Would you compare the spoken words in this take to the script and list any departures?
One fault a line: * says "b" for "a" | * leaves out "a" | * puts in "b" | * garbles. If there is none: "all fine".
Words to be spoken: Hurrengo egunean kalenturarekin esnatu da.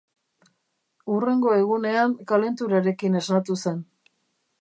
* says "zen" for "da"